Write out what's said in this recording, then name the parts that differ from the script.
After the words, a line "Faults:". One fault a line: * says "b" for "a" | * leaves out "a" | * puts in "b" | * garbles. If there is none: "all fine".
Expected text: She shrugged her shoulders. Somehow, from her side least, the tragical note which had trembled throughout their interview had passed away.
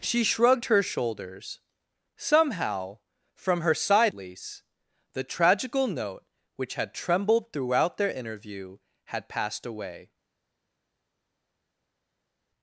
She shrugged her shoulders. Somehow, from her side least, the tragical note which had trembled throughout their interview had passed away.
Faults:
all fine